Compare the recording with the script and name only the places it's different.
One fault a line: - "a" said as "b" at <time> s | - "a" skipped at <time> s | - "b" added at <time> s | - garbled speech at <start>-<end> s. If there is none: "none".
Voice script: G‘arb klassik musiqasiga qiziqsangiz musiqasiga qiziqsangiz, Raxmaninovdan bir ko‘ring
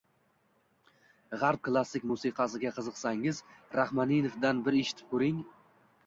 - "musiqasiga qiziqsangiz" skipped at 3.4 s
- "eshitib" added at 4.8 s